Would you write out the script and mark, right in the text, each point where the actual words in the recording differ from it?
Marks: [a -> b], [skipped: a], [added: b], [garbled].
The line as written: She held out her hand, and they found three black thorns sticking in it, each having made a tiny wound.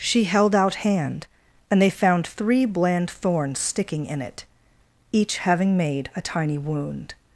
She held out [skipped: her] hand, and they found three [black -> bland] thorns sticking in it, each having made a tiny wound.